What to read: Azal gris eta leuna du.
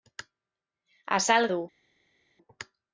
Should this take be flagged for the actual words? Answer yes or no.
yes